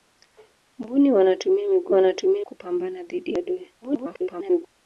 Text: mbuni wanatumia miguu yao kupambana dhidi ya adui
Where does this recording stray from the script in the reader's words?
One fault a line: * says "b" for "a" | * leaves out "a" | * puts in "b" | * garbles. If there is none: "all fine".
* says "wanatumia" for "yao"
* garbles